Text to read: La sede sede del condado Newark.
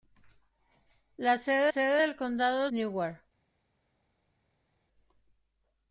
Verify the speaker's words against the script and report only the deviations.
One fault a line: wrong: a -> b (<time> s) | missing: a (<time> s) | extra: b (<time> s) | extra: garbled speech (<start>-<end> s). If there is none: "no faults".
no faults